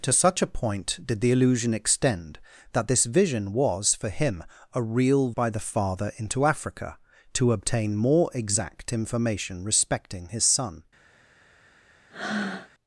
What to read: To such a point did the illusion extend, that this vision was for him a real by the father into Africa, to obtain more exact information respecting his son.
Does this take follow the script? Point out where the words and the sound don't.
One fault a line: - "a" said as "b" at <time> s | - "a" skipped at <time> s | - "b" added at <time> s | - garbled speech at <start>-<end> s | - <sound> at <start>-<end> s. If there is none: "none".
- breath at 12.1-12.7 s